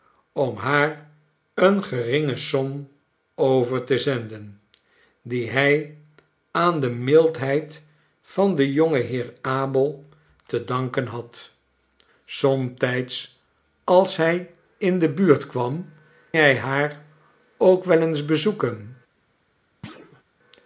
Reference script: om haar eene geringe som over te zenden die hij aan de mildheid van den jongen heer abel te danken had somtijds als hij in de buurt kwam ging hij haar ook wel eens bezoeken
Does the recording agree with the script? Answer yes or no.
no